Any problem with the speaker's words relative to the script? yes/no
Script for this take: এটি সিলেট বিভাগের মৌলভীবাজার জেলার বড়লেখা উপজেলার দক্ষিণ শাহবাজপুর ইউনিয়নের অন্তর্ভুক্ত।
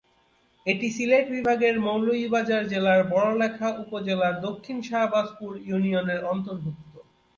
no